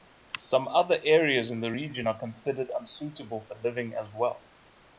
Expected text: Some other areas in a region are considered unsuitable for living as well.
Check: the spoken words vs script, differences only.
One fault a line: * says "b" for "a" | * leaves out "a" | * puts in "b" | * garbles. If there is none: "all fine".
* says "the" for "a"